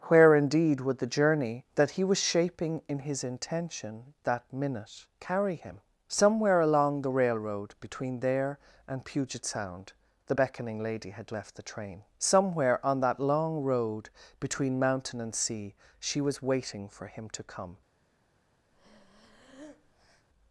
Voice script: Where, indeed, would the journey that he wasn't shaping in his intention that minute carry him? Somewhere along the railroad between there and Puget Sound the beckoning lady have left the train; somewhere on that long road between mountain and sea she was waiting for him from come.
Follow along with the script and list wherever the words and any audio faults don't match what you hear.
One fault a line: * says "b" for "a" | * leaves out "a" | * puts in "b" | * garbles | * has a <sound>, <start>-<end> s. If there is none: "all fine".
* says "was" for "wasn't"
* says "had" for "have"
* says "to" for "from"
* has a breath, 18.7-20.3 s